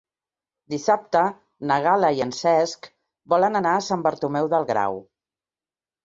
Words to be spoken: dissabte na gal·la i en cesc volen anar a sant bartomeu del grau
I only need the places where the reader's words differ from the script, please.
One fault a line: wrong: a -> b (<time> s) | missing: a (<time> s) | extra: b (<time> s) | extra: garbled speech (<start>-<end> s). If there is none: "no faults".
no faults